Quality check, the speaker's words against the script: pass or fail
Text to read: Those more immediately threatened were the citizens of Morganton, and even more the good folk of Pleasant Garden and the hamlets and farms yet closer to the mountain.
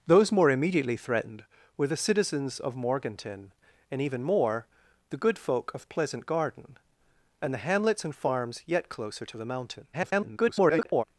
fail